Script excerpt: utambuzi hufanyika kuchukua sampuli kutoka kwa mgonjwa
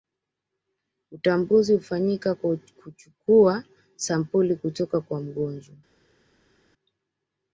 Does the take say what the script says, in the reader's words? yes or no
no